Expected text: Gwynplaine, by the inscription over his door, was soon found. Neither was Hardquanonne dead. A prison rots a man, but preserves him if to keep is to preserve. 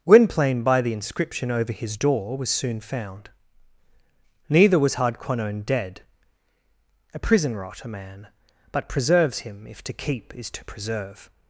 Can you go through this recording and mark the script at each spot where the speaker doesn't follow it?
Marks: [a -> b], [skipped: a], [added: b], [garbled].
Gwynplaine, by the inscription over his door, was soon found. Neither was Hardquanonne dead. A prison [rots -> rot] a man, but preserves him if to keep is to preserve.